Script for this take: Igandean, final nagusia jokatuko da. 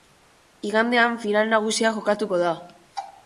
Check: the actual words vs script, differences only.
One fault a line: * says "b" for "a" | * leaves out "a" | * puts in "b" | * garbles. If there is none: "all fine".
all fine